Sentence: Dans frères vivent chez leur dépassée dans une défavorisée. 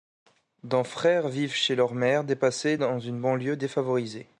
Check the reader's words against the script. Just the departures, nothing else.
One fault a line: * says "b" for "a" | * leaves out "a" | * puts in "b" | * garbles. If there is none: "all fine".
* puts in "mère"
* puts in "banlieue"